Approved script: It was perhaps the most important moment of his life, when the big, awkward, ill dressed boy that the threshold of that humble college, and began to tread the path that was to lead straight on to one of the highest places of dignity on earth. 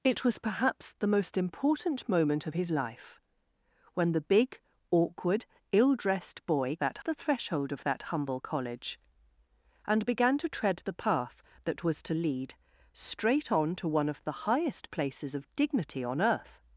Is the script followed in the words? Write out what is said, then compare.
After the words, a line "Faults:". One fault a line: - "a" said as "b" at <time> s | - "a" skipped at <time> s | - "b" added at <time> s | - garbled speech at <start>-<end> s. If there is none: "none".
It was perhaps the most important moment of his life, when the big, awkward, ill dressed boy that the threshold of that humble college, and began to tread the path that was to lead straight on to one of the highest places of dignity on earth.
Faults:
none